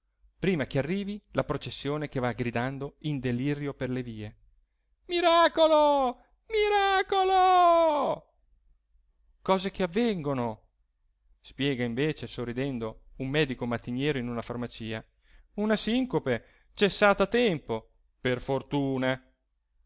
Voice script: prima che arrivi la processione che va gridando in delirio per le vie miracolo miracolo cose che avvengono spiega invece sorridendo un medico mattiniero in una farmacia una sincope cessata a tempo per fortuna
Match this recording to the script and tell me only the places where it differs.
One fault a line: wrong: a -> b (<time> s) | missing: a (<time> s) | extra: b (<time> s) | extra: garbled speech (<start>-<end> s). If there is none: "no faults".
no faults